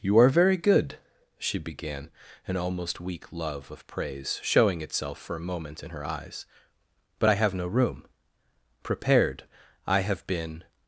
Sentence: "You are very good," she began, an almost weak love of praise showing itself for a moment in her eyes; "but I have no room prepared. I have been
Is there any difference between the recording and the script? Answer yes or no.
no